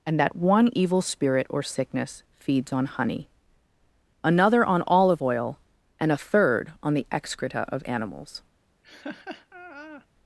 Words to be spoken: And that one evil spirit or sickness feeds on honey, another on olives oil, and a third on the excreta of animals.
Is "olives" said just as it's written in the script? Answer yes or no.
no